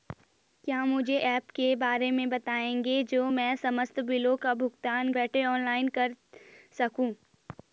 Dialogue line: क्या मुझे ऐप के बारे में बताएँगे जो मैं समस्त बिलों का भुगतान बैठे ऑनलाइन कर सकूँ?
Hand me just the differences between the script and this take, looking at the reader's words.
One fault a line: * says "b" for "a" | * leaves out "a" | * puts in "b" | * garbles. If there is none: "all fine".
all fine